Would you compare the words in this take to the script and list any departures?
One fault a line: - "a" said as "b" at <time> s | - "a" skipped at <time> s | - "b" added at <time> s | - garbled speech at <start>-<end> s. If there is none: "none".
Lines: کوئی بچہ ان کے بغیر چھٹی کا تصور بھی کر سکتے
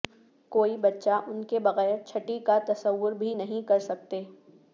- "نہیں" added at 3.3 s